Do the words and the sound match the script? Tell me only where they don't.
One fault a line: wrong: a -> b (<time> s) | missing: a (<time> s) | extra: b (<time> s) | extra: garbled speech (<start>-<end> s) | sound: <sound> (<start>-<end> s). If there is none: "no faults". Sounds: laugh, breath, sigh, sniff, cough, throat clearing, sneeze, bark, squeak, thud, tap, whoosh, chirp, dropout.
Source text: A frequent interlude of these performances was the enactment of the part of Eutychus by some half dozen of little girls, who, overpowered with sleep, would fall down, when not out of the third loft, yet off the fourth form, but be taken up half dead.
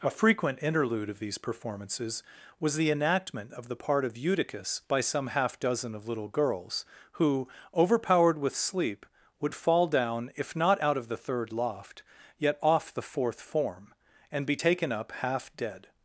wrong: when -> if (10.4 s)
wrong: but -> and (14.3 s)